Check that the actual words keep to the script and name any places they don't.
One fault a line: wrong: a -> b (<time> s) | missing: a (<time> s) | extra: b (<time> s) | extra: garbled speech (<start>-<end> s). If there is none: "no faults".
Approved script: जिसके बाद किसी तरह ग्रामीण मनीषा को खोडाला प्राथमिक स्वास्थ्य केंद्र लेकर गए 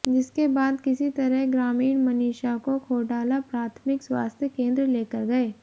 no faults